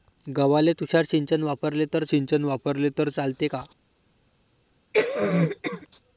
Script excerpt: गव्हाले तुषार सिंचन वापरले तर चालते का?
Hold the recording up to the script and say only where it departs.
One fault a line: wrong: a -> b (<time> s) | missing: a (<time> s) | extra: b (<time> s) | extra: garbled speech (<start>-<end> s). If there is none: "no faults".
extra: सिंचन वापरले तर (2.0 s)